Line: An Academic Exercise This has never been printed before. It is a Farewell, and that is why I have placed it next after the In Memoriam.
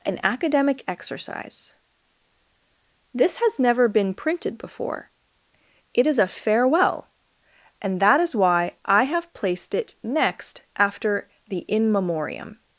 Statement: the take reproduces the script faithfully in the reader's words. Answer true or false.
true